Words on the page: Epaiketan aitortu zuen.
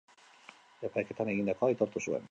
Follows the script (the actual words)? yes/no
no